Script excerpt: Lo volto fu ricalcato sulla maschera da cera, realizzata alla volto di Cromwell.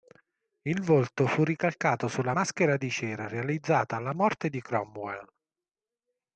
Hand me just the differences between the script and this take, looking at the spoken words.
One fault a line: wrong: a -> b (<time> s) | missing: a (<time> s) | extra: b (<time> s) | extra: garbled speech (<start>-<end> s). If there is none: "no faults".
wrong: Lo -> Il (0.6 s)
wrong: da -> di (2.8 s)
wrong: volto -> morte (4.1 s)